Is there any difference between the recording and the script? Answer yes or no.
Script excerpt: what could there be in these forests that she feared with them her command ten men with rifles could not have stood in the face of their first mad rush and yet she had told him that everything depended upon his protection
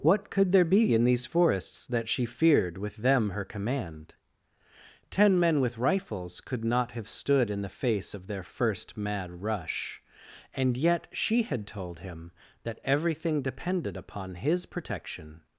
no